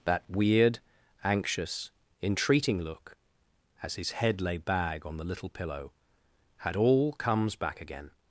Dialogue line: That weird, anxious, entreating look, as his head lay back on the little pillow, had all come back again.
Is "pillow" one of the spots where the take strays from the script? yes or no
no